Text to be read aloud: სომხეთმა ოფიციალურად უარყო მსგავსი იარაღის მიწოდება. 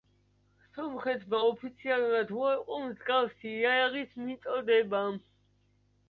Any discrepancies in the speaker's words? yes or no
no